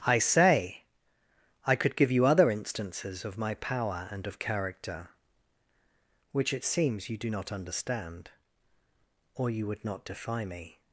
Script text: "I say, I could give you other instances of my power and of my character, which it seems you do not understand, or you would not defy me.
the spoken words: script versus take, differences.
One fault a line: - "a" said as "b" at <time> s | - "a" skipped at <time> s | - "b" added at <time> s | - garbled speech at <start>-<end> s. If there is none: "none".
- "my" skipped at 4.4 s